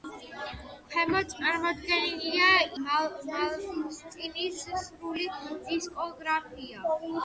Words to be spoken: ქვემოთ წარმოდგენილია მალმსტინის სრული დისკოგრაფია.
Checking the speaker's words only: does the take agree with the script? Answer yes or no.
yes